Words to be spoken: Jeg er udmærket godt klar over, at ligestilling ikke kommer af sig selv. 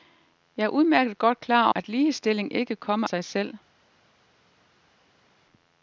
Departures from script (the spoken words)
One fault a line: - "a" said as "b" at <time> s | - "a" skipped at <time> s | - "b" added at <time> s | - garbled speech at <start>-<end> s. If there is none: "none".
- "over" skipped at 1.7 s
- "af" skipped at 3.1 s